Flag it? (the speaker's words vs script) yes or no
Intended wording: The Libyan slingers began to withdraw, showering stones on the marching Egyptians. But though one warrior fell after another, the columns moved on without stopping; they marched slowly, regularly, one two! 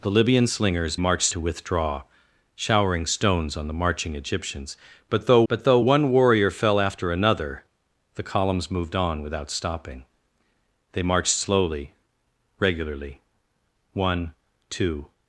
yes